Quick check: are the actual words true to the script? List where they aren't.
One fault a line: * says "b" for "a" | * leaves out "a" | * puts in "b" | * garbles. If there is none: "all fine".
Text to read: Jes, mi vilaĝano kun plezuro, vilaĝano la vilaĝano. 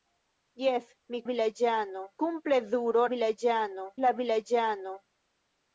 all fine